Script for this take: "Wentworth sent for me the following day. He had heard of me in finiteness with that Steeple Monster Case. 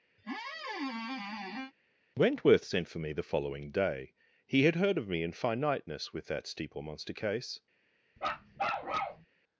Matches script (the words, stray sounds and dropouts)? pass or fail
fail